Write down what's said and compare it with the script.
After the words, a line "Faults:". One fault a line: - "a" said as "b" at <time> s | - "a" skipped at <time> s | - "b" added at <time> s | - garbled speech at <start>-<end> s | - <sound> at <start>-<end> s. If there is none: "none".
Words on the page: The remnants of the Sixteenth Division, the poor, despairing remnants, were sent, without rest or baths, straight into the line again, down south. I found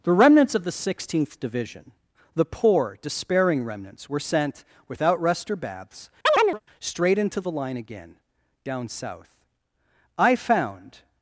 The remnants of the Sixteenth Division, the poor, despairing remnants, were sent, without rest or baths, straight into the line again, down south. I found
Faults:
- chirp at 6.3-6.6 s